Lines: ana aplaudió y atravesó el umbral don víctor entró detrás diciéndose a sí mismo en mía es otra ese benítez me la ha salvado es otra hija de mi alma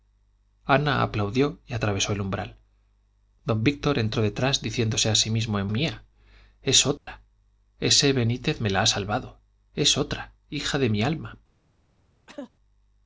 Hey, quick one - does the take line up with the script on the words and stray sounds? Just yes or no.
no